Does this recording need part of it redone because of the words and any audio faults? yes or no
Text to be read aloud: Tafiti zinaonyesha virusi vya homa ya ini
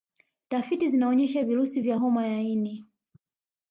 no